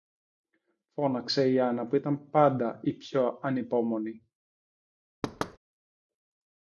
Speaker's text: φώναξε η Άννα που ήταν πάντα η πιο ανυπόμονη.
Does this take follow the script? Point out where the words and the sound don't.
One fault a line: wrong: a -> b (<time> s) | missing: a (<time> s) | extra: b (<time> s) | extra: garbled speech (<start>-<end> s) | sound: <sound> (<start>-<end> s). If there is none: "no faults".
sound: thud (5.2-5.6 s)